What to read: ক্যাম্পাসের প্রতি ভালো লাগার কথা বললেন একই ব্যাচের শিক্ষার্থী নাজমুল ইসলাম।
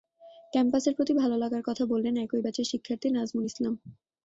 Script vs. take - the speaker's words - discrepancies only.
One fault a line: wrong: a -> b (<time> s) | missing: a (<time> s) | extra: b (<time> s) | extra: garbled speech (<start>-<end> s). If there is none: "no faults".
no faults